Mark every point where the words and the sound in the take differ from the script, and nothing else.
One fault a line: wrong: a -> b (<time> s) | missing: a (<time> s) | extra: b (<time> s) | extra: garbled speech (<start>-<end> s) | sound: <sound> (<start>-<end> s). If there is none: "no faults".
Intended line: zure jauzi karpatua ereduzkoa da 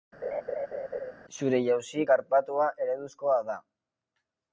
sound: laugh (0.2-1.1 s)